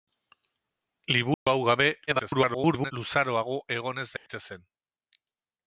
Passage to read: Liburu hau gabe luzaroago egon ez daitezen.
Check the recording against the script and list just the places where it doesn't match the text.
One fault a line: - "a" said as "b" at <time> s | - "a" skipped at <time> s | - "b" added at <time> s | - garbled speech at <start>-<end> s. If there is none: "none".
- garbled speech at 2.1-2.9 s